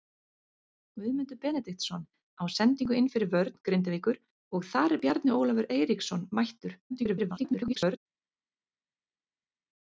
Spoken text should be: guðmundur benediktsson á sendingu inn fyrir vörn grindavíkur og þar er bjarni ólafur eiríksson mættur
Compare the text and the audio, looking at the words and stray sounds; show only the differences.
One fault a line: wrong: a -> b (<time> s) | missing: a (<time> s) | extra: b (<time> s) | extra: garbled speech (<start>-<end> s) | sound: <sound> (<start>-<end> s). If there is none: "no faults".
extra: garbled speech (6.9-8.0 s)